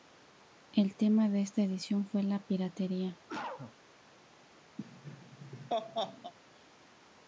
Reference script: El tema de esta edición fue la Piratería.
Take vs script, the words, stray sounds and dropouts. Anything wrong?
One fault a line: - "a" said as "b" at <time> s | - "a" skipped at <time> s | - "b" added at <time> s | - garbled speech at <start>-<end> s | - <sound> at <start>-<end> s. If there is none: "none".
- cough at 3.3-3.8 s
- laugh at 4.8-6.3 s